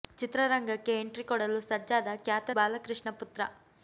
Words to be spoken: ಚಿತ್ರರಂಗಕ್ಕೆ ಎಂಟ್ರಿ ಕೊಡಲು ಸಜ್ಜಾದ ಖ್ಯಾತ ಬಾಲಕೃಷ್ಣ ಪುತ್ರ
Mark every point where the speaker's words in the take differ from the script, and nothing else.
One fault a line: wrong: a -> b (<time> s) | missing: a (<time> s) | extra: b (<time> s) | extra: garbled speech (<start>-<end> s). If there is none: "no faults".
no faults